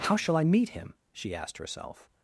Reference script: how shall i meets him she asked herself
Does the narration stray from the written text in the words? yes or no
yes